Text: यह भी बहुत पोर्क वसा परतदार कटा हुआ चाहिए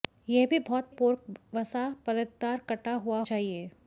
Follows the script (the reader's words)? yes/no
yes